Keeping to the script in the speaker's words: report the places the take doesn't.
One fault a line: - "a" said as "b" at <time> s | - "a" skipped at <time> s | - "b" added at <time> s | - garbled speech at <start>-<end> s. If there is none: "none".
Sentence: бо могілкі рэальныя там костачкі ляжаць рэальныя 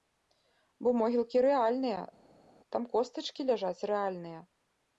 none